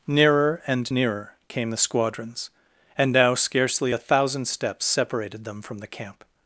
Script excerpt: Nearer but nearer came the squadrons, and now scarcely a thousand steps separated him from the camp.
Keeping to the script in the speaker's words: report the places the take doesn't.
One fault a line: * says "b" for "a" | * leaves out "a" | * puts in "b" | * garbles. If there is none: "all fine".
* says "and" for "but"
* says "them" for "him"